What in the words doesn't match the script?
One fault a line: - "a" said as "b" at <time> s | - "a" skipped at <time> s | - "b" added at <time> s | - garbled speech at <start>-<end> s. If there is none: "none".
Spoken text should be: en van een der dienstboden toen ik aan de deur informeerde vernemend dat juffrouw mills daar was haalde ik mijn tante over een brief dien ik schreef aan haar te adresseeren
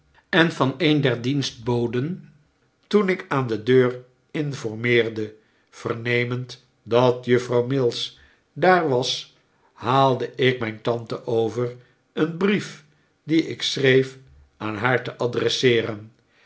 none